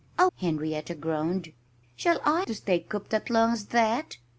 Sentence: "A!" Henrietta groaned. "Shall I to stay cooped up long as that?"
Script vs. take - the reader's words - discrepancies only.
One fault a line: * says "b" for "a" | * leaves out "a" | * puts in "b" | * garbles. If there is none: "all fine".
all fine